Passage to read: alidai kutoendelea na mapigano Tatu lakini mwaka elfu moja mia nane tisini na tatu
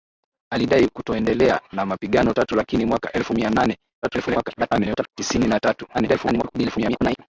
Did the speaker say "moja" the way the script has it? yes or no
no